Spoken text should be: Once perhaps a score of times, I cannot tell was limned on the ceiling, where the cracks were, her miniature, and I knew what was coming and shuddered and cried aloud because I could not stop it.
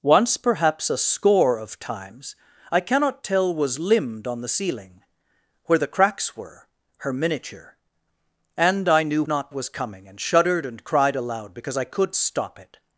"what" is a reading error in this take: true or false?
true